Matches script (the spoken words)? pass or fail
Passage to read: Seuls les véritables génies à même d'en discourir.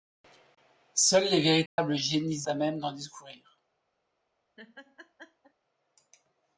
pass